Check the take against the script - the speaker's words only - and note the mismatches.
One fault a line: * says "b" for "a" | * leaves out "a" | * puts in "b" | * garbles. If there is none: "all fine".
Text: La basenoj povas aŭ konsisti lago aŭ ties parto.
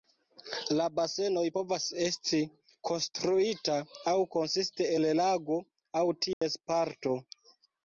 * puts in "esti konstruita"
* puts in "el"